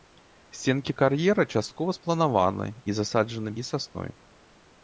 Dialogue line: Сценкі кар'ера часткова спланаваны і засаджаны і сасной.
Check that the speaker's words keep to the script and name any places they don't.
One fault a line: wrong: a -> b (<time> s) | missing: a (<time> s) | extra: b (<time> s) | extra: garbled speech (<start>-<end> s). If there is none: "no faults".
no faults